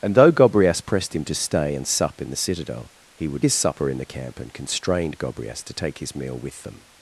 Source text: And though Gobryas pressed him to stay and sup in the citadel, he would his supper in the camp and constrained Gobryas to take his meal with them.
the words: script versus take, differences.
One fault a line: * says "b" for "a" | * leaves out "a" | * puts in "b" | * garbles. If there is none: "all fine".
all fine